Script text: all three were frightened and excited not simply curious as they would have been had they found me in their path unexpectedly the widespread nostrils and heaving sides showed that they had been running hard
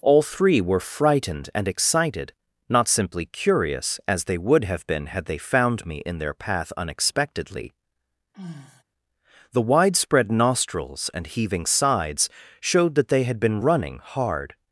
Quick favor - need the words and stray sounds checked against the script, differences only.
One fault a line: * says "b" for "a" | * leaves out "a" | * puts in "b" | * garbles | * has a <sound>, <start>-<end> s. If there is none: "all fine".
* has a sigh, 8.3-8.8 s